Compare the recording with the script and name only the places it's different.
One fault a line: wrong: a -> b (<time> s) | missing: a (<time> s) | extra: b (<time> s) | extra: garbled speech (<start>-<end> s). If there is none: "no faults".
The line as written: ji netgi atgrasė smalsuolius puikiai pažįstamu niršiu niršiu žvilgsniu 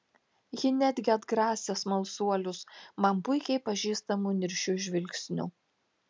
extra: man (3.1 s)
missing: niršiu (4.8 s)